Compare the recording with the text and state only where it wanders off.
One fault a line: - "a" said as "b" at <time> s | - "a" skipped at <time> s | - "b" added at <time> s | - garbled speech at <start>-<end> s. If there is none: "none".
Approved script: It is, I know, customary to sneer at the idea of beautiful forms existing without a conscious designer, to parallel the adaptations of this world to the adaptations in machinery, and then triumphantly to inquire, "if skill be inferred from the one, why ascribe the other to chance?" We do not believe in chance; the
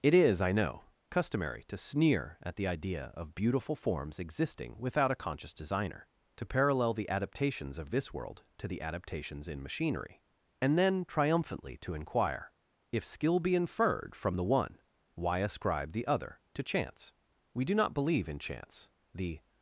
none